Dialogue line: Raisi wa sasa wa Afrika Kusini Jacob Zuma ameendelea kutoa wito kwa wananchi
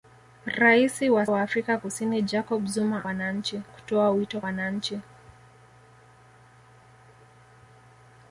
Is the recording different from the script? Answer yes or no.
yes